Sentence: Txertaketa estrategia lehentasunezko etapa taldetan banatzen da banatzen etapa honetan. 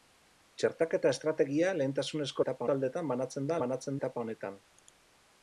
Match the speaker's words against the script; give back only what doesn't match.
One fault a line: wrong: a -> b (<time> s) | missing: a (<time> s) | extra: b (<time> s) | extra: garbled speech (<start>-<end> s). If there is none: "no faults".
no faults